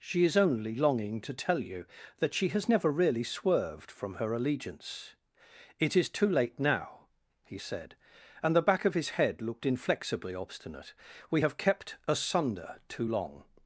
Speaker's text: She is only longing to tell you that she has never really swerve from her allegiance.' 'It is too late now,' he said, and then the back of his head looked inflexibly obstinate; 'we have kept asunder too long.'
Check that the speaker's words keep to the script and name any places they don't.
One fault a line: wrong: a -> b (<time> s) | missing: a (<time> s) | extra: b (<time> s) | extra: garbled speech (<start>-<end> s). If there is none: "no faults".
wrong: swerve -> swerved (3.2 s)
missing: then (8.6 s)